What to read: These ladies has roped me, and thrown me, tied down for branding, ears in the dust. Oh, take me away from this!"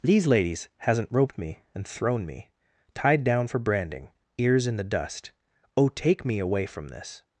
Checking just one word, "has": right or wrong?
wrong